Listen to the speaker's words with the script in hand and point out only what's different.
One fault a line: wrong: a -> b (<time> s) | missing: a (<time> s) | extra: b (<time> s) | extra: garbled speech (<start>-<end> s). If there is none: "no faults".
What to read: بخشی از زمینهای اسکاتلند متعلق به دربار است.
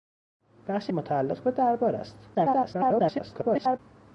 missing: از زمینهای اسکاتلند (0.9 s)
extra: garbled speech (2.3-3.8 s)